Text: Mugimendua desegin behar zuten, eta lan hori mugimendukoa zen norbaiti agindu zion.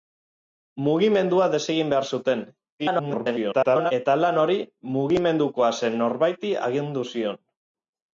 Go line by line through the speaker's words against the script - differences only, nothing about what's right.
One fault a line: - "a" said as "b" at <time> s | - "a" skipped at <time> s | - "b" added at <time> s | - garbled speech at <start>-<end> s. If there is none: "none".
- garbled speech at 2.8-3.9 s